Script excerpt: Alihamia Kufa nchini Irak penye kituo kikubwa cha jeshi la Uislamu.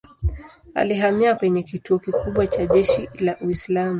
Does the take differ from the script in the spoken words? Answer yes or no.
yes